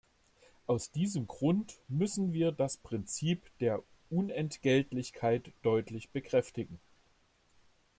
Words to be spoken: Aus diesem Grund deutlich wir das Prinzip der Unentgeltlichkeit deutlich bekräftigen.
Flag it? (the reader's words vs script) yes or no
yes